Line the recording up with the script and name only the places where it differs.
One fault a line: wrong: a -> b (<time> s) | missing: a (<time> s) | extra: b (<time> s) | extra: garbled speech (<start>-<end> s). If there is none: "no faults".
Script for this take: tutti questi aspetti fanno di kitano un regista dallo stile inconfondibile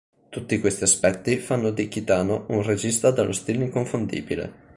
no faults